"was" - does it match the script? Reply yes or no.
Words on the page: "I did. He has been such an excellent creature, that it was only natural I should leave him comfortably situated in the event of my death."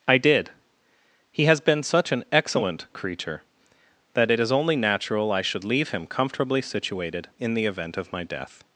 no